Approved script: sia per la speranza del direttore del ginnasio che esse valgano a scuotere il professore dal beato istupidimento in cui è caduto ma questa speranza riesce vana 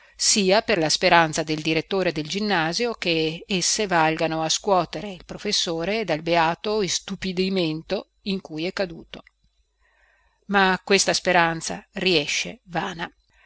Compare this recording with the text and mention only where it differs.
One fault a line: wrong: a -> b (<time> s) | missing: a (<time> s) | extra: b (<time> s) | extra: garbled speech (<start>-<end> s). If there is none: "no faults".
no faults